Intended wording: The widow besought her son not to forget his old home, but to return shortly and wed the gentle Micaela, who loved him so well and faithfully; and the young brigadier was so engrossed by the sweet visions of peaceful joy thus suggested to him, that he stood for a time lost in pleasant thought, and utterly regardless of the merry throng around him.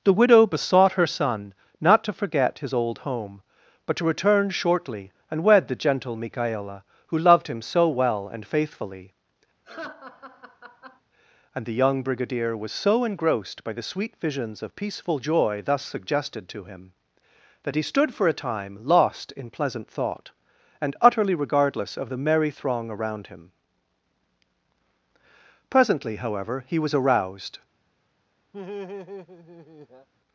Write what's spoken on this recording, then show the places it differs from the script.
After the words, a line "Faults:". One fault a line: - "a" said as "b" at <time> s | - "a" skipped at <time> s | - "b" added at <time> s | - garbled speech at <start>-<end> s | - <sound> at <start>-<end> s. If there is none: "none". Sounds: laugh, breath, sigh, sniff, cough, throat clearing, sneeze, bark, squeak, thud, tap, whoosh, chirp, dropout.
The widow besought her son not to forget his old home, but to return shortly and wed the gentle Micaela, who loved him so well and faithfully; and the young brigadier was so engrossed by the sweet visions of peaceful joy thus suggested to him, that he stood for a time lost in pleasant thought, and utterly regardless of the merry throng around him. Presently, however, he was aroused
Faults:
- laugh at 9.6-11.0 s
- "Presently however he was aroused" added at 25.7 s
- laugh at 28.5-30.1 s